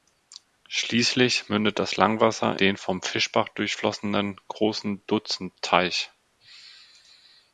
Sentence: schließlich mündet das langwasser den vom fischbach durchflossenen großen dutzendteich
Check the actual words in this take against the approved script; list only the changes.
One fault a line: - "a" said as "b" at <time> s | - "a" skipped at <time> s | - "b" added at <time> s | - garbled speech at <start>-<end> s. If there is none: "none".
none